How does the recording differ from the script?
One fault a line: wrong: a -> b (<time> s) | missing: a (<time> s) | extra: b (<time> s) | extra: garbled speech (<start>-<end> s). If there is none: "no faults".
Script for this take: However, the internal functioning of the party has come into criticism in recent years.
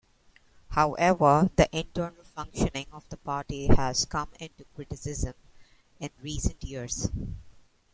no faults